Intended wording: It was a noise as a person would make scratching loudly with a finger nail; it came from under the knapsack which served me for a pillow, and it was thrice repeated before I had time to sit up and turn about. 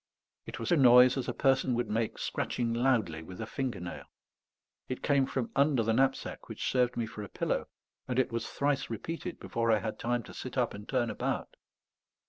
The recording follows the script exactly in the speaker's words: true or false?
true